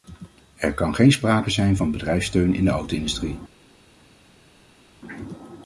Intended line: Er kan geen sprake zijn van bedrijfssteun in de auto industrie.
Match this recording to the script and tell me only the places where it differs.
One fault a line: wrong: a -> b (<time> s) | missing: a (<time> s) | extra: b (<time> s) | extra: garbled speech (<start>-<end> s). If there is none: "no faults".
no faults